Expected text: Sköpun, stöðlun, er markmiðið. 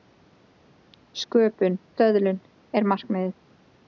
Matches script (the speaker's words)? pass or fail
pass